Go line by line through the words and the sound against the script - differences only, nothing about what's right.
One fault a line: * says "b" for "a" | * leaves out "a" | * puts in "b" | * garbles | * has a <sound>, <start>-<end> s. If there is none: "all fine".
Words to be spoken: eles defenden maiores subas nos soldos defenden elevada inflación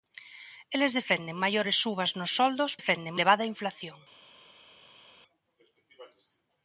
all fine